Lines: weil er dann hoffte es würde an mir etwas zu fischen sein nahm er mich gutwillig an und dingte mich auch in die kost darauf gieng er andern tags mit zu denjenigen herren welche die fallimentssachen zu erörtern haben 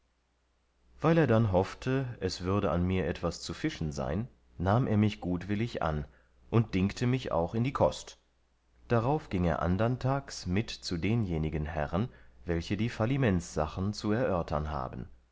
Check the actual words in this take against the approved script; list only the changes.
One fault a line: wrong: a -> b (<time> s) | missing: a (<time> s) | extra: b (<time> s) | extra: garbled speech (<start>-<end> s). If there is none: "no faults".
no faults